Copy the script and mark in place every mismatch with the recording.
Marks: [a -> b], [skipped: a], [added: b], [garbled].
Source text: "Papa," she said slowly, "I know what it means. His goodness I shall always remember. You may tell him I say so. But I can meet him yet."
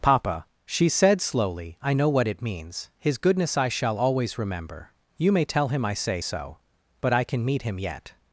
"Papa," she said slowly, "I know what it means. His goodness I shall always remember. You may tell him I say so. But I can meet him yet."